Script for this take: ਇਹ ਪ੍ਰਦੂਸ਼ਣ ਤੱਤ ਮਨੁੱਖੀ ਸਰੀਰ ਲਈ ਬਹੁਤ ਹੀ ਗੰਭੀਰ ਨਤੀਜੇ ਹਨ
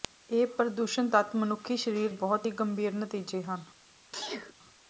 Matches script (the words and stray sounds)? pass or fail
fail